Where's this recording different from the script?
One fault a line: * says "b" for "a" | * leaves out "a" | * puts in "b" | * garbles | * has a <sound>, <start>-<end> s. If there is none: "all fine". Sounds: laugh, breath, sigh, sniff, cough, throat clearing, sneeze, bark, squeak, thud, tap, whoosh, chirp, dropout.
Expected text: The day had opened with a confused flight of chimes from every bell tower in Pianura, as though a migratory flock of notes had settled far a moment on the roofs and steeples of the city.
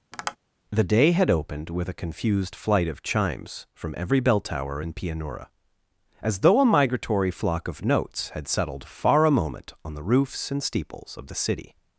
* has a tap, 0.1-0.4 s